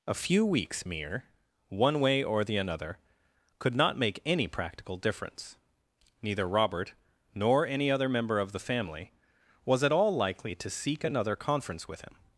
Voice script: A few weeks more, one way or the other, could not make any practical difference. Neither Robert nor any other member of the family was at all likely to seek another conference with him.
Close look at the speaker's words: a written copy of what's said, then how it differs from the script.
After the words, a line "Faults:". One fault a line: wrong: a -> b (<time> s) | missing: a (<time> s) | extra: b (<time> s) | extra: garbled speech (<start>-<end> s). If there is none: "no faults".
A few weeks mere, one way or the another, could not make any practical difference. Neither Robert nor any other member of the family was at all likely to seek another conference with him.
Faults:
wrong: more -> mere (0.8 s)
wrong: other -> another (2.6 s)